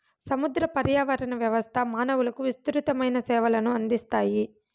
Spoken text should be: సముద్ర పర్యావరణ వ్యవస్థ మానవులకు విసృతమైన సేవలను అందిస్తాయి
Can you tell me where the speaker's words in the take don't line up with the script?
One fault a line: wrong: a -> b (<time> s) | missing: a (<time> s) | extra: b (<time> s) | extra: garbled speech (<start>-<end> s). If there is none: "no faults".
no faults